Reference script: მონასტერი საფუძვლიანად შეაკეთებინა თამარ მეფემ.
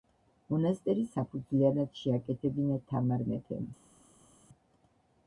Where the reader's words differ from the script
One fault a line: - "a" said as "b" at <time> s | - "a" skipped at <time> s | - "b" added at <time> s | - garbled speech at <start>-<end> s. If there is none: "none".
none